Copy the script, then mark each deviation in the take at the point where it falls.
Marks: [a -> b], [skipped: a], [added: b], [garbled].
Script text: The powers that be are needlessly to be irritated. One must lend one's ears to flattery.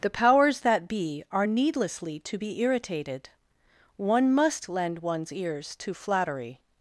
The powers that be are needlessly to be irritated. One must lend one's ears to flattery.